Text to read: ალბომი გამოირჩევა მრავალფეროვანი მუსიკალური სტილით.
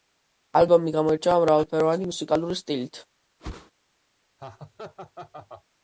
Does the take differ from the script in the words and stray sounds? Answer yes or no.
yes